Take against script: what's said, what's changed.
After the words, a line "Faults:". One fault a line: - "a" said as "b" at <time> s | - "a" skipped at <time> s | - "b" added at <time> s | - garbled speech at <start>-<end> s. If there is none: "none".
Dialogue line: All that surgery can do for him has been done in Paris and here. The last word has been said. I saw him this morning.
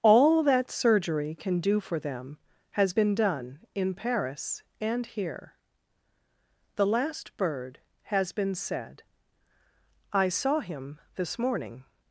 All that surgery can do for them has been done in Paris and here. The last bird has been said. I saw him this morning.
Faults:
- "him" said as "them" at 2.0 s
- "word" said as "bird" at 7.4 s